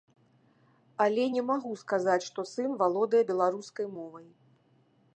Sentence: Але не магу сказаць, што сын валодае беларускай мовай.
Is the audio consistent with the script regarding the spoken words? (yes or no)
yes